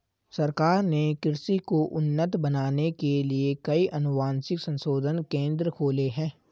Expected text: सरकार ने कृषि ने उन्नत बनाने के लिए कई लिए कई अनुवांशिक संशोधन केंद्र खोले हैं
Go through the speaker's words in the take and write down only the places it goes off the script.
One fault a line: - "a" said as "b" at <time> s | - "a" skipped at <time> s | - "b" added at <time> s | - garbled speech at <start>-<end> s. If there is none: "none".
- "ने" said as "को" at 1.7 s
- "लिए कई" skipped at 3.9 s